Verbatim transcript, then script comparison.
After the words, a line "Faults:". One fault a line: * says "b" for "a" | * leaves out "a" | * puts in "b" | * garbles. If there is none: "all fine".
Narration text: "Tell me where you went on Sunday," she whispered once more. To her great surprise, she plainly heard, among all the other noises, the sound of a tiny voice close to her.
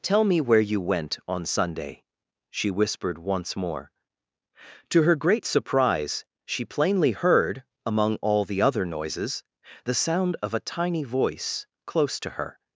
"Tell me where you went on Sunday," she whispered once more. To her great surprise, she plainly heard, among all the other noises, the sound of a tiny voice close to her.
Faults:
all fine